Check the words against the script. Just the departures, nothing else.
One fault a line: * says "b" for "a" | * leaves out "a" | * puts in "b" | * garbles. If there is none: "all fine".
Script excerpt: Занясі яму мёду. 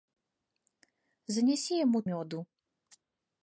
all fine